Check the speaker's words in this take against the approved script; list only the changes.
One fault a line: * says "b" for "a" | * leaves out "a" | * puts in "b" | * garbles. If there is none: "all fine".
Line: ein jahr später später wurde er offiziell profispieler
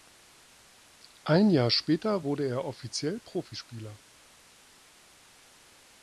* leaves out "später"